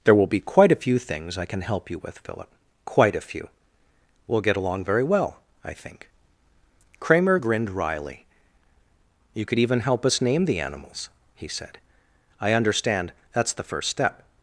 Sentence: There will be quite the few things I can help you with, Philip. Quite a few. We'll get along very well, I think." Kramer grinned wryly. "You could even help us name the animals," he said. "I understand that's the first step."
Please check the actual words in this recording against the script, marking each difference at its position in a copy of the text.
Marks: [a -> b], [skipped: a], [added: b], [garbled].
There will be quite [the -> a] few things I can help you with, Philip. Quite a few. We'll get along very well, I think." Kramer grinned wryly. "You could even help us name the animals," he said. "I understand that's the first step."